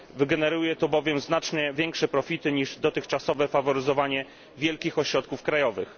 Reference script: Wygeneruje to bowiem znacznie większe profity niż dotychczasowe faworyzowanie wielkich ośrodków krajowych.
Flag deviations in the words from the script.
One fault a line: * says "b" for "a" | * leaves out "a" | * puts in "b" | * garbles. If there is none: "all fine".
all fine